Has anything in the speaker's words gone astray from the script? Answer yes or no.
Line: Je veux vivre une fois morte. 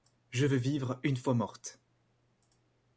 no